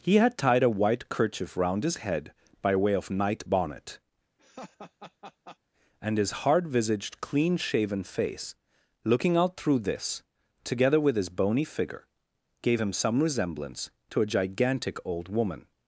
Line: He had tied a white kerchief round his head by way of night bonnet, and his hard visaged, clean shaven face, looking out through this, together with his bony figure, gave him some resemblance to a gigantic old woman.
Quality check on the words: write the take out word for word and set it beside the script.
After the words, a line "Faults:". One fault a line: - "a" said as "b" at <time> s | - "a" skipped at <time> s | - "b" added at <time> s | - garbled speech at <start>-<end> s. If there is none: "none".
He had tied a white kerchief round his head by way of night bonnet, and his hard visaged, clean shaven face, looking out through this, together with his bony figure, gave him some resemblance to a gigantic old woman.
Faults:
none